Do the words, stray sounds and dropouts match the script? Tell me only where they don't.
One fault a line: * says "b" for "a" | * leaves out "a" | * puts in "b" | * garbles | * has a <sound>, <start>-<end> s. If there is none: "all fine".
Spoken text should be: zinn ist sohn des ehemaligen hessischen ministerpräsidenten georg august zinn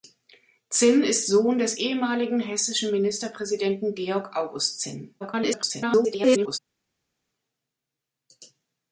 * garbles